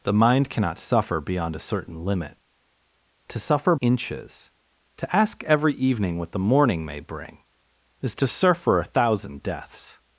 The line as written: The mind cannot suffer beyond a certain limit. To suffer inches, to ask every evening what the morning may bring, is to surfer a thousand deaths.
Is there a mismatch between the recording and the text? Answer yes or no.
no